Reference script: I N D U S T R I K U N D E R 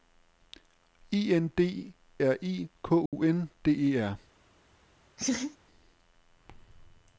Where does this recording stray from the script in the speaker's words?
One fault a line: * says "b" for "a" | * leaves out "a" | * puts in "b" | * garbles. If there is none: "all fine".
* leaves out "U S T"